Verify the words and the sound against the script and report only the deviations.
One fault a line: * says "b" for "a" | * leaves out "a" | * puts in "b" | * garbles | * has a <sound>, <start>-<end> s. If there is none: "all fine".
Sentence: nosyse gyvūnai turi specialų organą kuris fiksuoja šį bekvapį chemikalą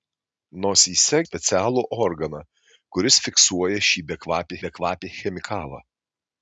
* leaves out "gyvūnai turi"
* puts in "bekvapį"